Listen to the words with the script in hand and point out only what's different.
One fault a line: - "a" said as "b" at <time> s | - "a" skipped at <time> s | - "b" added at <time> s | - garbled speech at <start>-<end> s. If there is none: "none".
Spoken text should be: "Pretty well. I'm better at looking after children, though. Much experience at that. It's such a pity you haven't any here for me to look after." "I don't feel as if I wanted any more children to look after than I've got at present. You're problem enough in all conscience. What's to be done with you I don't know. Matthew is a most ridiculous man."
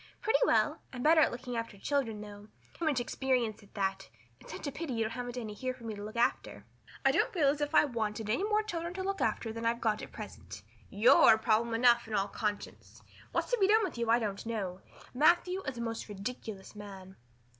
none